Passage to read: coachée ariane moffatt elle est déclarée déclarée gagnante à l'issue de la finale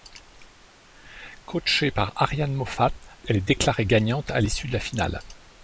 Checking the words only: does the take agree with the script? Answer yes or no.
no